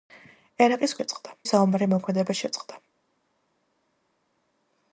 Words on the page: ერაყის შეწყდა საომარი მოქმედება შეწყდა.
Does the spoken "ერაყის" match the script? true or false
true